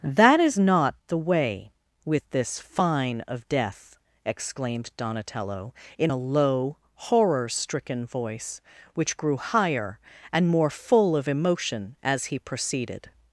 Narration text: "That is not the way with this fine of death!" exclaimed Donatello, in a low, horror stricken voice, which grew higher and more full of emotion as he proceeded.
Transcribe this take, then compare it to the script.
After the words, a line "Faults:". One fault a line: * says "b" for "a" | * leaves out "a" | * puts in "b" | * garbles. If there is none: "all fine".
"That is not the way with this fine of death!" exclaimed Donatello, in a low, horror stricken voice, which grew higher and more full of emotion as he proceeded.
Faults:
all fine